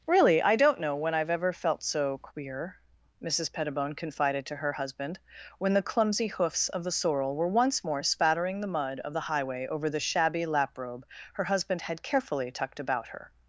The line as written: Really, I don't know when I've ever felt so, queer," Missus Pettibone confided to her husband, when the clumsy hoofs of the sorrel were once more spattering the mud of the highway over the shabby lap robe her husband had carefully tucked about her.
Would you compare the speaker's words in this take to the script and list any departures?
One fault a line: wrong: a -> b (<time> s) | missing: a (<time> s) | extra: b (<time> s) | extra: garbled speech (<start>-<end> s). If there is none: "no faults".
no faults